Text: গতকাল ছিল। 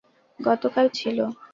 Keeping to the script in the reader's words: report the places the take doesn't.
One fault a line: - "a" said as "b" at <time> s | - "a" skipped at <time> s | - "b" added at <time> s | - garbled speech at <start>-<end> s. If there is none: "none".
none